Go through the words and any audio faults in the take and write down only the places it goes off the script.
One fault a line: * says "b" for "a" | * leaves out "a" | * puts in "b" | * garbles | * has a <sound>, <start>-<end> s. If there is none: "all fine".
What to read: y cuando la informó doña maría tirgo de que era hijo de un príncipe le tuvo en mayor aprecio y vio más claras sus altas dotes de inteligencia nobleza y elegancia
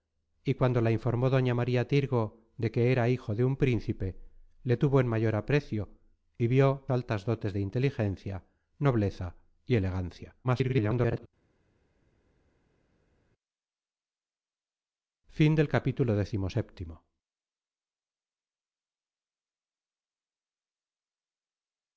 * leaves out "más claras sus"
* garbles